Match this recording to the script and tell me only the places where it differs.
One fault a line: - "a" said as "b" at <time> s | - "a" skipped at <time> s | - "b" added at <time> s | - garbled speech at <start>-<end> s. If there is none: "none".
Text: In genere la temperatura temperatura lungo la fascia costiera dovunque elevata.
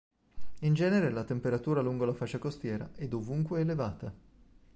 - "temperatura" skipped at 1.8 s
- "è" added at 3.0 s